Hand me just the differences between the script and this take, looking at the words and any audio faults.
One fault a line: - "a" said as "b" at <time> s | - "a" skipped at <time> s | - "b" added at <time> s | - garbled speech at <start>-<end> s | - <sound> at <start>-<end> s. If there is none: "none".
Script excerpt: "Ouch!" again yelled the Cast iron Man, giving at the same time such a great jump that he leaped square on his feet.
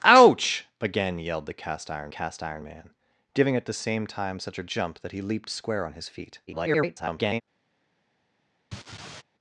- "Cast iron" added at 2.1 s
- "great" skipped at 4.7 s
- garbled speech at 6.5-7.4 s
- laugh at 8.7-9.2 s